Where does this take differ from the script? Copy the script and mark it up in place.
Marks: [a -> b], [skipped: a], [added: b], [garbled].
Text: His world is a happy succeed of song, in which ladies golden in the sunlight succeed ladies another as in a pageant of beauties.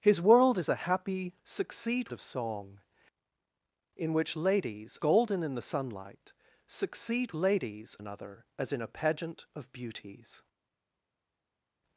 His world is a happy succeed of song, in which ladies golden in the sunlight succeed ladies another as in a pageant of beauties.